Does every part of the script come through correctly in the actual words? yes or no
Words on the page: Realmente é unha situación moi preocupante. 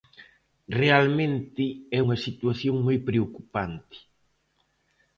yes